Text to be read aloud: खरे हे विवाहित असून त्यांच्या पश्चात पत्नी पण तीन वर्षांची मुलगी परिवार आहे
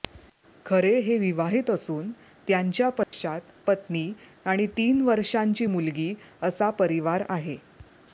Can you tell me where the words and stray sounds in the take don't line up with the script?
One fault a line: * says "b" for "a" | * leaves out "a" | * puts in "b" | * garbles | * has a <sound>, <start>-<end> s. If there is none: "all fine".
* has a dropout, 3.0-3.1 s
* says "आणि" for "पण"
* puts in "असा"